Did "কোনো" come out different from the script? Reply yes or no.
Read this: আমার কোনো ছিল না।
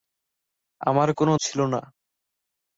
no